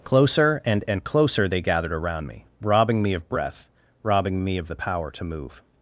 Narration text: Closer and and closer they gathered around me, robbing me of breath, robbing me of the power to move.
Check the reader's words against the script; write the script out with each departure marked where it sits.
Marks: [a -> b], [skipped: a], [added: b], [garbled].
Closer and and closer they gathered around me, robbing me of breath, robbing me of the power to move.